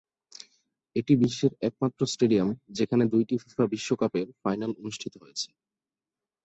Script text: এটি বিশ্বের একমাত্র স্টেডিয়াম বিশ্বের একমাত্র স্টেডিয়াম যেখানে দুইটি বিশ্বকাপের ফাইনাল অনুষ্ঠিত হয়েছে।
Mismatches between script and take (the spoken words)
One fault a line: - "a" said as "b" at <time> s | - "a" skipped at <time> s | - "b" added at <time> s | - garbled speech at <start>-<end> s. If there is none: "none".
- "বিশ্বের একমাত্র স্টেডিয়াম" skipped at 2.5 s
- "ফিফা" added at 3.4 s